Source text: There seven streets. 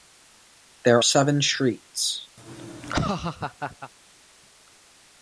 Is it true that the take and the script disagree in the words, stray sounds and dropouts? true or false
true